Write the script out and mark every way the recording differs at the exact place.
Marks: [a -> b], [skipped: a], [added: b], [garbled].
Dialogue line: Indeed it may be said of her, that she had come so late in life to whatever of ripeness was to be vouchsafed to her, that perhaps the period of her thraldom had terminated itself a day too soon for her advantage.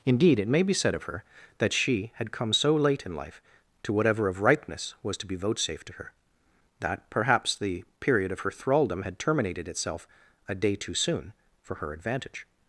Indeed it may be said of her, that she had come so late in life to whatever of ripeness was to be vouchsafed to her, that perhaps the period of her thraldom had terminated itself a day too soon for her advantage.